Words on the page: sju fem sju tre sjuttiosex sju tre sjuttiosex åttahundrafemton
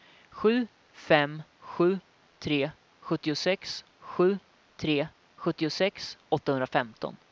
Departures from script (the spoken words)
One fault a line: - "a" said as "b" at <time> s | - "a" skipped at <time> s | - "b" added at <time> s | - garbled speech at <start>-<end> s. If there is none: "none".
none